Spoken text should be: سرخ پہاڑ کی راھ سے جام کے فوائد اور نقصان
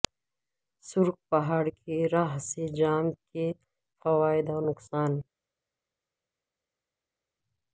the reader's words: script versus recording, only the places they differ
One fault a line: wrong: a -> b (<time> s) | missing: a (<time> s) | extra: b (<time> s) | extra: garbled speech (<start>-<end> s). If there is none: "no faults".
no faults